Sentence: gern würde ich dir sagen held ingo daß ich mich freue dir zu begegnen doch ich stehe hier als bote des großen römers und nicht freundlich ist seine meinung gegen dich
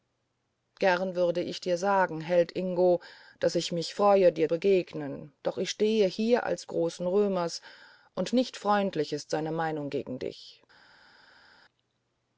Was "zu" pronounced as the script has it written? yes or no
no